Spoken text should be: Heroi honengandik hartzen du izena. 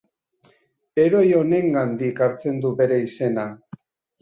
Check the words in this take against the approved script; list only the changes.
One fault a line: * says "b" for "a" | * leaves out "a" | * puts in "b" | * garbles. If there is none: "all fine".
* puts in "bere"